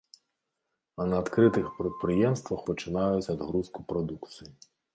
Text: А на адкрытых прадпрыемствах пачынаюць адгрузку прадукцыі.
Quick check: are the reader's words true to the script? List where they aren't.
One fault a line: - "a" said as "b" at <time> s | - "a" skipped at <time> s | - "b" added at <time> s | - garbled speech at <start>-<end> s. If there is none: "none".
none